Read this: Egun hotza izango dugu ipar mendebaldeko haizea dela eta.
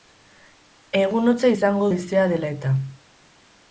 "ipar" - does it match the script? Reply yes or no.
no